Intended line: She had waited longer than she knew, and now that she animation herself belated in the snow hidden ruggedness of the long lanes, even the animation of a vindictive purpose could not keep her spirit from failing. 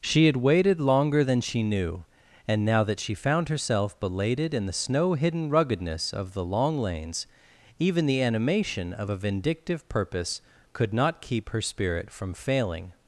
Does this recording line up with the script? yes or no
no